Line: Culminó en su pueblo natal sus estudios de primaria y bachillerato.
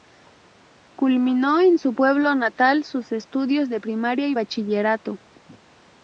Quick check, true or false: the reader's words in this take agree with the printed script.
true